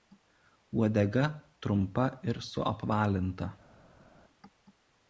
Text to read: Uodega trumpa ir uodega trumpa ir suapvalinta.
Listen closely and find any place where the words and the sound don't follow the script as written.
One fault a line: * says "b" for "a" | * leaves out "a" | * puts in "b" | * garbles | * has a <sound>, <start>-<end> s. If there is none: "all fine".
* leaves out "uodega trumpa ir"